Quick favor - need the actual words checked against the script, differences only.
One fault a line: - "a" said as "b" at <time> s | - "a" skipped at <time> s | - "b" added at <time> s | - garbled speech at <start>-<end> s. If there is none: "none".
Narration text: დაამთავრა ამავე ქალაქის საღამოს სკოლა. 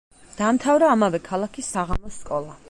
none